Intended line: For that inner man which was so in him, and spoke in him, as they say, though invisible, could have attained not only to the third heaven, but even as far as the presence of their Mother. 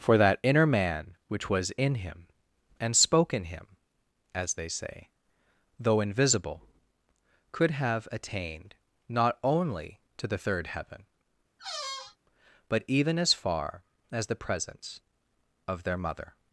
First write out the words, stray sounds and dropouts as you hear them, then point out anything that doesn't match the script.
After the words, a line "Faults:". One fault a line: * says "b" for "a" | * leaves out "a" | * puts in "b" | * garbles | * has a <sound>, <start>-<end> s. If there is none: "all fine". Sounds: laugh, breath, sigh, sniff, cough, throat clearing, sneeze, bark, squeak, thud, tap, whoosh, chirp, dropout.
For that inner man which was in him, and spoke in him, as they say, though invisible, could have attained not only to the third heaven, but even as far as the presence of their Mother.
Faults:
* leaves out "so"
* has a squeak, 11.6-12.2 s